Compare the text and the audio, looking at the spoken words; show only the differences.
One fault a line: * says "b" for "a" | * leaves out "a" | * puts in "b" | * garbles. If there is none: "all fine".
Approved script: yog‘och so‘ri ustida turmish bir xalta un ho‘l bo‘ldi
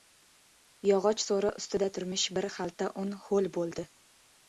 all fine